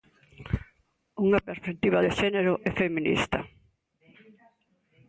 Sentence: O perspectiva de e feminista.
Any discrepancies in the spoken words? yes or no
yes